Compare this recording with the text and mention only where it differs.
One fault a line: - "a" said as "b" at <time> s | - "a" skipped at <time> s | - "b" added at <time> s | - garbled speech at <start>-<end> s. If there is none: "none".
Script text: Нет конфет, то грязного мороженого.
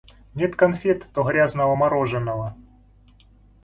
none